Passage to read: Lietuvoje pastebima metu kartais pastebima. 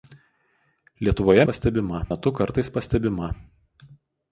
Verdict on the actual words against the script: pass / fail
pass